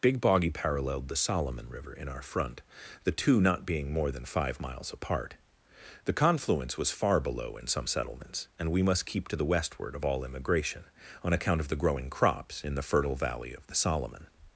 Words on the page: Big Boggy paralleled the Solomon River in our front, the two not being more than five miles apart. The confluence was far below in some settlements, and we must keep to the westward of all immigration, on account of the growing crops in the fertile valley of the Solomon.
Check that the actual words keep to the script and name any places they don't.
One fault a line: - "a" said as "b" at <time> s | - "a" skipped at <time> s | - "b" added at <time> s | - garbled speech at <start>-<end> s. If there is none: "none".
none